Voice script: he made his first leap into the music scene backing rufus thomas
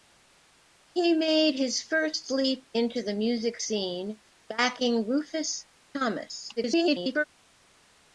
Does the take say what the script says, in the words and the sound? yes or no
no